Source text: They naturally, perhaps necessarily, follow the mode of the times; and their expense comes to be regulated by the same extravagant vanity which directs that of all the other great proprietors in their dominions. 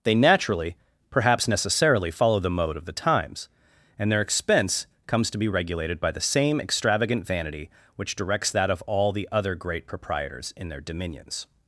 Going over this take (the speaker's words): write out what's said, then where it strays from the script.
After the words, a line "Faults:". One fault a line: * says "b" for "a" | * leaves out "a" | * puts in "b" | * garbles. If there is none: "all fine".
They naturally, perhaps necessarily, follow the mode of the times; and their expense comes to be regulated by the same extravagant vanity which directs that of all the other great proprietors in their dominions.
Faults:
all fine